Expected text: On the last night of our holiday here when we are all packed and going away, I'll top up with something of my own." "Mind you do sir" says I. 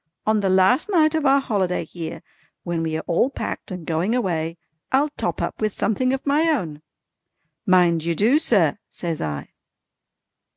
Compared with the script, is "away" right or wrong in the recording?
right